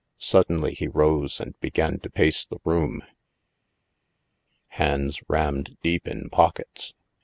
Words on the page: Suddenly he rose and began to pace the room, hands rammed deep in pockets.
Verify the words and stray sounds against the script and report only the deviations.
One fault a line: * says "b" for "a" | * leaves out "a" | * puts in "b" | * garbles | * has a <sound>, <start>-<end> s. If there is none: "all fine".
all fine